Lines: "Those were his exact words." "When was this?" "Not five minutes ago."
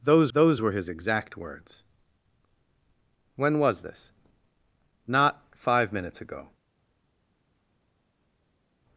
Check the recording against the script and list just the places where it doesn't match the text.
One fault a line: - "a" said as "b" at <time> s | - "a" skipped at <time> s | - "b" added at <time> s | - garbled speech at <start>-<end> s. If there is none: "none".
- "those" added at 0.3 s